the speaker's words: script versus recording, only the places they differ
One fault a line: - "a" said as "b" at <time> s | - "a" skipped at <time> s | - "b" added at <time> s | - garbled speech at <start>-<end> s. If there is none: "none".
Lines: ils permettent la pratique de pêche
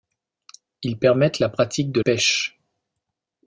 none